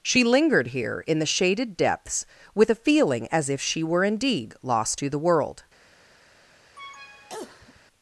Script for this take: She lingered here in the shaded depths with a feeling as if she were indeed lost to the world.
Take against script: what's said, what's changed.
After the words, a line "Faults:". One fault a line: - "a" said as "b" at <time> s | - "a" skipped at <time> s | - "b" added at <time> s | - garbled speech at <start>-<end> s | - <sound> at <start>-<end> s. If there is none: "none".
She lingered here in the shaded depths with a feeling as if she were indeed lost to the world.
Faults:
- cough at 6.8-7.8 s